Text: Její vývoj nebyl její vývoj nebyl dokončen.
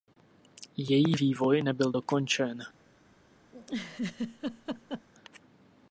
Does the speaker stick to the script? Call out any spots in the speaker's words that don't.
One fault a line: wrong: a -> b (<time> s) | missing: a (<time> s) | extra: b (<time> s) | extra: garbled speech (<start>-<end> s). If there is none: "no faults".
missing: její vývoj nebyl (1.9 s)